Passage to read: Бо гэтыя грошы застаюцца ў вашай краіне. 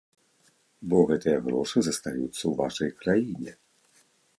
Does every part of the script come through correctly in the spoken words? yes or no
yes